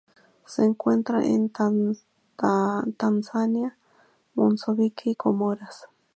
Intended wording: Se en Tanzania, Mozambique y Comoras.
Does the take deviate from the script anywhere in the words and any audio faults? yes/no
yes